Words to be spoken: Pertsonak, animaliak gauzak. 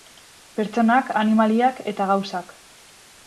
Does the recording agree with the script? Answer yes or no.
no